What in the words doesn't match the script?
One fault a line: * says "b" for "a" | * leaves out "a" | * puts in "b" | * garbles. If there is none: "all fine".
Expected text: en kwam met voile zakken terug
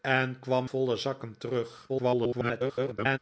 * leaves out "met"
* garbles